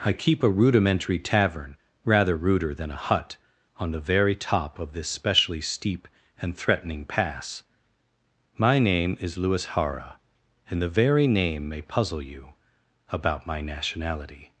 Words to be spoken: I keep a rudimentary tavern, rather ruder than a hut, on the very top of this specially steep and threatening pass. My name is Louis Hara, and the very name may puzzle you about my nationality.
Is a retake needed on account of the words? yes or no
no